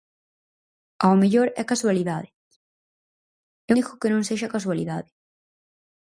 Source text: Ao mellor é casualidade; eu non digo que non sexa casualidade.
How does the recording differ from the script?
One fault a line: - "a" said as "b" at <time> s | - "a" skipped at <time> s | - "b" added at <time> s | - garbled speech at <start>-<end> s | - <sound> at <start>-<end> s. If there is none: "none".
- "non" skipped at 3.7 s